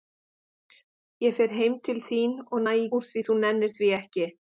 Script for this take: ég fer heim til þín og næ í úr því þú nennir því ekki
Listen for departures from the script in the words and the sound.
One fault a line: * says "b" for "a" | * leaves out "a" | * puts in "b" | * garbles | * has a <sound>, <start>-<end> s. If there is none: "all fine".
all fine